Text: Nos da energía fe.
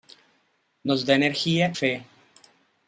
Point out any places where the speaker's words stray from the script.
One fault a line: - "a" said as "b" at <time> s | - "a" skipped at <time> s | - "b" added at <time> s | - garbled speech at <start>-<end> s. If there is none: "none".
none